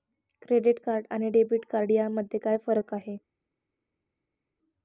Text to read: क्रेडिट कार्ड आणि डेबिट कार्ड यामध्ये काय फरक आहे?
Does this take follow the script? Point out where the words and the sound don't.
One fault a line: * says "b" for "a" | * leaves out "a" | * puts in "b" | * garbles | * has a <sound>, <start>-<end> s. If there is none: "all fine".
all fine